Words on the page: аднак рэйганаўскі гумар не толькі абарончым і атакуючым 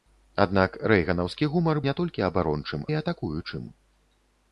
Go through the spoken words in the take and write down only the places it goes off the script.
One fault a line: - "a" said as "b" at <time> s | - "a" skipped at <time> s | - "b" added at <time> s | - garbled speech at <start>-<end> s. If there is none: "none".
none